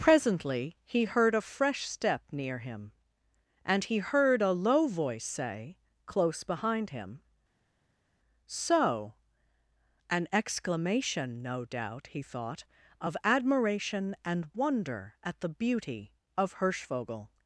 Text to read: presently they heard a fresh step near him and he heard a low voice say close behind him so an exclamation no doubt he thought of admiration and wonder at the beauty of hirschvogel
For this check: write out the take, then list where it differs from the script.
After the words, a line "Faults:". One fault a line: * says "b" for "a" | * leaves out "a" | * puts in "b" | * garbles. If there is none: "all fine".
presently he heard a fresh step near him and he heard a low voice say close behind him so an exclamation no doubt he thought of admiration and wonder at the beauty of hirschvogel
Faults:
* says "he" for "they"